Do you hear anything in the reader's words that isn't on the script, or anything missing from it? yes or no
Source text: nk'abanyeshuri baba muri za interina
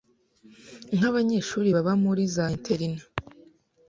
no